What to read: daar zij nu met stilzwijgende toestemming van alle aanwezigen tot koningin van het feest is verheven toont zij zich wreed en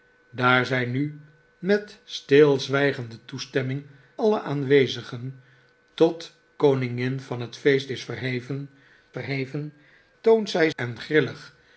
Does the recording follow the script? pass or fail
fail